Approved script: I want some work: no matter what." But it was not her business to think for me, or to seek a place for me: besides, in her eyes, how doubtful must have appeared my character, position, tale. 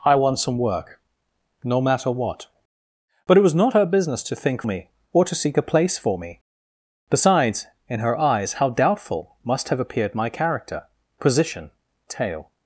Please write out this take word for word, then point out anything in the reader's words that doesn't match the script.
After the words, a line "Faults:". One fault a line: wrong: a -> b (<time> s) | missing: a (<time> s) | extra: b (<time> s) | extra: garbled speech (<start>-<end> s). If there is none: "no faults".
I want some work: no matter what." But it was not her business to think me, or to seek a place for me: besides, in her eyes, how doubtful must have appeared my character, position, tale.
Faults:
missing: for (4.6 s)